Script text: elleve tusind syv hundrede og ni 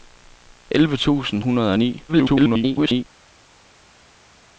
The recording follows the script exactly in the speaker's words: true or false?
false